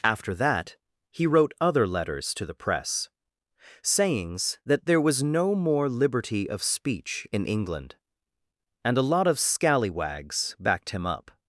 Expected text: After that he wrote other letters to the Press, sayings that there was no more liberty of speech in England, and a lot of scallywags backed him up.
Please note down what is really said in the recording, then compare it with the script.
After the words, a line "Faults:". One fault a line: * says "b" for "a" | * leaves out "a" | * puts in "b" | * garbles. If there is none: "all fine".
After that he wrote other letters to the Press, sayings that there was no more liberty of speech in England, and a lot of scallywags backed him up.
Faults:
all fine